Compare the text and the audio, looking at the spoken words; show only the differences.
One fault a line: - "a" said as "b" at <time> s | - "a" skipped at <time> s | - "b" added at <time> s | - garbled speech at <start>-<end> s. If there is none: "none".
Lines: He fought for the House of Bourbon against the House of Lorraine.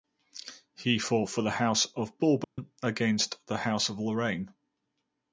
none